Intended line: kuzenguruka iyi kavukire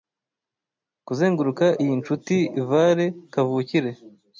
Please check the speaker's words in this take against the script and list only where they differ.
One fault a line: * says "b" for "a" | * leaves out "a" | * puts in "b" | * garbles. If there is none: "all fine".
* puts in "nshuti vale"